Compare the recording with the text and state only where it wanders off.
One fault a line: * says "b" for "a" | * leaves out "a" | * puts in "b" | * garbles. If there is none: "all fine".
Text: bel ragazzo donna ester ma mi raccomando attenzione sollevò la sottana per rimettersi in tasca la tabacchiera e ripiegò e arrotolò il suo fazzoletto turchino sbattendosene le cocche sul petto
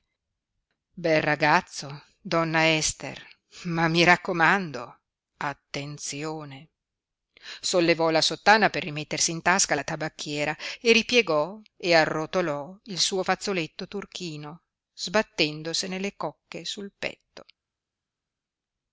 all fine